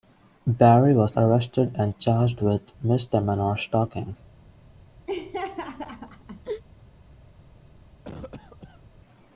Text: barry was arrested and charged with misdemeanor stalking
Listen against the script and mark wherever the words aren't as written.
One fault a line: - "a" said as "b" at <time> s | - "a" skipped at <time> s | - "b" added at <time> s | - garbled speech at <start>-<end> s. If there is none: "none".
none